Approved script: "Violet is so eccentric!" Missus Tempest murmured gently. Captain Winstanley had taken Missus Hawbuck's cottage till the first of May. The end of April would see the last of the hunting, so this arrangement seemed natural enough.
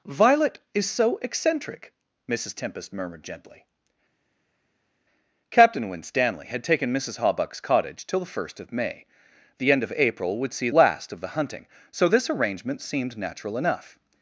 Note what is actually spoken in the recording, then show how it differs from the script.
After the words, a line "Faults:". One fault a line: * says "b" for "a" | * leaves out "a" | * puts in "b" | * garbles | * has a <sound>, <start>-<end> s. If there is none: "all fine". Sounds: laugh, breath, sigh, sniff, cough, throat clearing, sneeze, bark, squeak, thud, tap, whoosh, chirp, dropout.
"Violet is so eccentric!" Missus Tempest murmured gently. Captain Winstanley had taken Missus Hawbuck's cottage till the first of May. The end of April would see last of the hunting, so this arrangement seemed natural enough.
Faults:
* leaves out "the"